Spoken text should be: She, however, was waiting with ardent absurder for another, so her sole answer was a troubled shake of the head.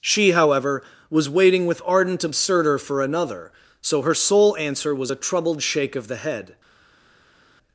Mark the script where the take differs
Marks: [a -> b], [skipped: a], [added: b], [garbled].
She, however, was waiting with ardent absurder for another, so her sole answer was a troubled shake of the head.